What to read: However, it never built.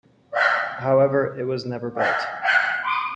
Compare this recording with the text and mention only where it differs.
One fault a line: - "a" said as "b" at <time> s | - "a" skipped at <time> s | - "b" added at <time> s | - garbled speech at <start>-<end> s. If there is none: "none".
- "was" added at 1.4 s